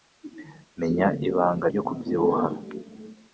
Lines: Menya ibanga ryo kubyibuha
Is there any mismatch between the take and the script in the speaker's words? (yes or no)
no